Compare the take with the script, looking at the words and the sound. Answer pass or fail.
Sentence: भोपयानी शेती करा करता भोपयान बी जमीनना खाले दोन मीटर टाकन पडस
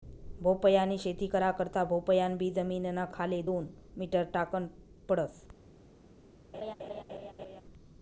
fail